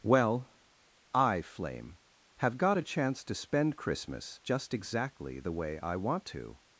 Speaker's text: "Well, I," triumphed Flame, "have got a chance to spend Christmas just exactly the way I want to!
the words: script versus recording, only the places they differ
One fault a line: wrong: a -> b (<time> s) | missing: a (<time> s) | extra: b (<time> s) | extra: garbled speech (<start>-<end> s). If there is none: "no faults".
missing: triumphed (1.4 s)